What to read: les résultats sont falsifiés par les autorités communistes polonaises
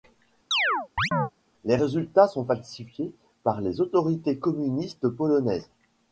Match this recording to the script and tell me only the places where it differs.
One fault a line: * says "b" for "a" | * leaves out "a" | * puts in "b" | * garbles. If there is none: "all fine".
all fine